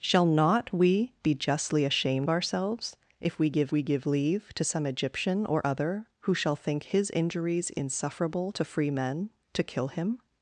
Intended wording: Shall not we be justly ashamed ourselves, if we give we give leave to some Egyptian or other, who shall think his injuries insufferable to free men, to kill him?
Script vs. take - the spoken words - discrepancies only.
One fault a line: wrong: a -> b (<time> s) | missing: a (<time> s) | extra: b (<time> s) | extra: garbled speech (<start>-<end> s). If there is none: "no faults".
no faults